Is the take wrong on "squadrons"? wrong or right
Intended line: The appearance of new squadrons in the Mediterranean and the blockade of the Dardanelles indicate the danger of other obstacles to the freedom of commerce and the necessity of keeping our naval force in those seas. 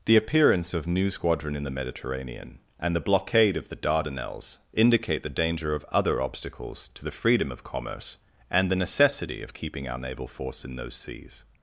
wrong